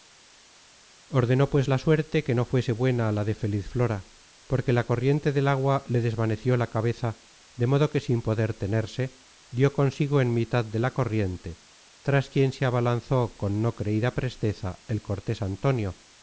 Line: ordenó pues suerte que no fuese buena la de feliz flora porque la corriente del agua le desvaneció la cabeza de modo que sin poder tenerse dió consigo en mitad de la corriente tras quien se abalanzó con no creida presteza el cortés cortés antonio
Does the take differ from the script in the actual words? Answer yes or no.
yes